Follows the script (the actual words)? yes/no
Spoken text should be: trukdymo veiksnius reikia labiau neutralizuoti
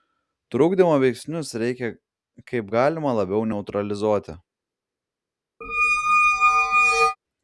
no